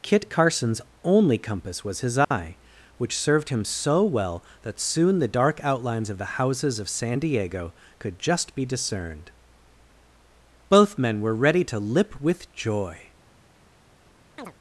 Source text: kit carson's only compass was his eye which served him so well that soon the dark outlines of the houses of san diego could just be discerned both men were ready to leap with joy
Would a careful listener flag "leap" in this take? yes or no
yes